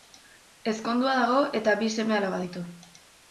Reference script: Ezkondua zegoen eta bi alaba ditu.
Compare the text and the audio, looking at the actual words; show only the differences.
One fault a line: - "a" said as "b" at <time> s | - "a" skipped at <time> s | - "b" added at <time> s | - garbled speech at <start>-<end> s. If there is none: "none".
- "zegoen" said as "dago" at 1.2 s
- "seme" added at 2.0 s